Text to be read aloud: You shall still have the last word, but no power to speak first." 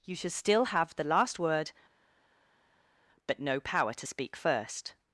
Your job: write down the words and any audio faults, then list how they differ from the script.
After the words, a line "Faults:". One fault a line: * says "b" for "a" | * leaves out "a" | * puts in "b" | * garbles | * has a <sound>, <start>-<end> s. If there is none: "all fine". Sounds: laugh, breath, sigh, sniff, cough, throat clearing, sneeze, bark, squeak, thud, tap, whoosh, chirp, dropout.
You should still have the last word, but no power to speak first."
Faults:
* says "should" for "shall"